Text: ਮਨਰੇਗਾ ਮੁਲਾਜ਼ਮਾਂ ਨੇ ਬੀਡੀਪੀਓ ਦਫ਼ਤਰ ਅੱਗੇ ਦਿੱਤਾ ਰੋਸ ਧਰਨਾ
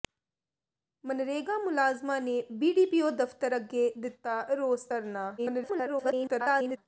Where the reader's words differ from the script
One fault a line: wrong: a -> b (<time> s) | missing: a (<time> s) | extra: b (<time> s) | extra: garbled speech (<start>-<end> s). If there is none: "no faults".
extra: garbled speech (5.4-6.8 s)